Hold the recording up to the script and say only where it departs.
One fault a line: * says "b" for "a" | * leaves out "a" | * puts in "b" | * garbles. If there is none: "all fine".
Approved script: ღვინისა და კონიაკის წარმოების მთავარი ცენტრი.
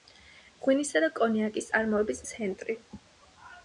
* leaves out "მთავარი"